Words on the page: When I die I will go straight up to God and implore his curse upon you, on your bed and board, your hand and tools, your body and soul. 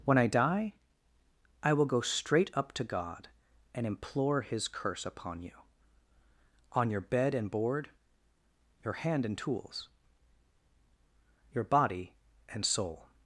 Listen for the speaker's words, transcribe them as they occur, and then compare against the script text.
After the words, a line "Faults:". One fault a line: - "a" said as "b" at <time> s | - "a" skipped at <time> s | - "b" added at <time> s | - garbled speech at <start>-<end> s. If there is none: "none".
When I die I will go straight up to God and implore his curse upon you, on your bed and board, your hand and tools, your body and soul.
Faults:
none